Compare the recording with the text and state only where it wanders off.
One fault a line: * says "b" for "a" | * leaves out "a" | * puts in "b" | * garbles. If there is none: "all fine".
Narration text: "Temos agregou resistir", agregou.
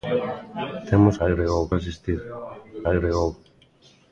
all fine